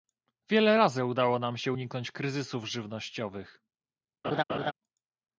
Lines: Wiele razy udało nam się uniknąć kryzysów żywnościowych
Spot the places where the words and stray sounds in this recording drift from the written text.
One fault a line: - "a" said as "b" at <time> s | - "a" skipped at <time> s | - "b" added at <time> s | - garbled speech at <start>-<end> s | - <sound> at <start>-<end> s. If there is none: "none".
- laugh at 4.2-4.7 s